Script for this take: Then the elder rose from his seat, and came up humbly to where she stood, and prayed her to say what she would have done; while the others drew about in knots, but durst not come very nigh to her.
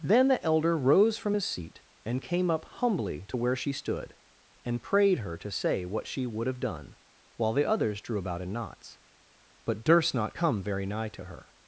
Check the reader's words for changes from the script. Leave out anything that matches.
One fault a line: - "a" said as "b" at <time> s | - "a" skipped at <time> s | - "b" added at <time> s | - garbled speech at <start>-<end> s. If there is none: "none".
none